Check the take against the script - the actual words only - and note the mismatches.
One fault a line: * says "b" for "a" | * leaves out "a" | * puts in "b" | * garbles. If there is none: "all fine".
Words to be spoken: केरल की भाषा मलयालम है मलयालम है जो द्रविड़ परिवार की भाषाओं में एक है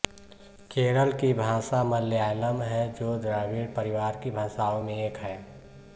* leaves out "मलयालम है"